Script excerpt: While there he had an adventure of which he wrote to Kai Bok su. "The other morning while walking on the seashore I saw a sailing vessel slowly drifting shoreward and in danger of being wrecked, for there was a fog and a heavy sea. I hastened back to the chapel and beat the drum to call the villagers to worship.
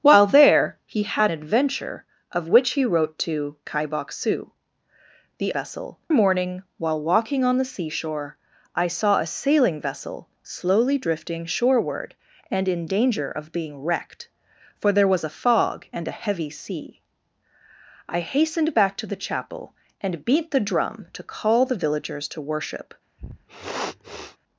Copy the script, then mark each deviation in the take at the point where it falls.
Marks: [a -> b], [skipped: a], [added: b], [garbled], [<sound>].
While there he had [skipped: an] adventure of which he wrote to Kai Bok su. "The [other -> vessel] morning while walking on the seashore I saw a sailing vessel slowly drifting shoreward and in danger of being wrecked, for there was a fog and a heavy sea. I hastened back to the chapel and beat the drum to call the villagers to worship. [sniff]